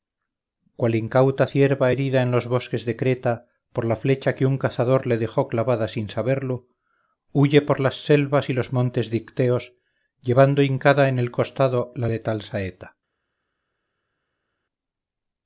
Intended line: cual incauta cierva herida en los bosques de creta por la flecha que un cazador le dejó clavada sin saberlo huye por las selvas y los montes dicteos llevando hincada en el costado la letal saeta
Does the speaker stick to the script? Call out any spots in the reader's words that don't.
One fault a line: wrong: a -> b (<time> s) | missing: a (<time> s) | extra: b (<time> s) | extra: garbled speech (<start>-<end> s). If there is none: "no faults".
no faults